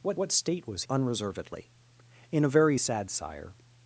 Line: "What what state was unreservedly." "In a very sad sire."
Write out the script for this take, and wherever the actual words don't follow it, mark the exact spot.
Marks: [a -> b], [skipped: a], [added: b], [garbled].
"What what state was unreservedly." "In a very sad sire."